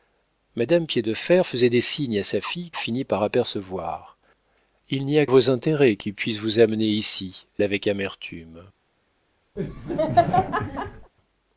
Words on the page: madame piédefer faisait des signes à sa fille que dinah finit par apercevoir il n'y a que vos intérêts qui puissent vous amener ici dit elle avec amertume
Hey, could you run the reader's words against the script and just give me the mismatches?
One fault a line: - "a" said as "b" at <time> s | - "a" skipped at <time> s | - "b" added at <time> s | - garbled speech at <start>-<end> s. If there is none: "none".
- "que dinah" skipped at 2.7 s
- "que" skipped at 5.3 s
- "dit elle" skipped at 7.4 s